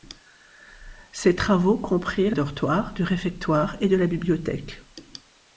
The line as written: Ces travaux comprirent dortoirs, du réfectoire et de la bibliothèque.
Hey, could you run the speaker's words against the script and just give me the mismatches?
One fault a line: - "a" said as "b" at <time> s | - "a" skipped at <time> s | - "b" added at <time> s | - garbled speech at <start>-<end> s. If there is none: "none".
none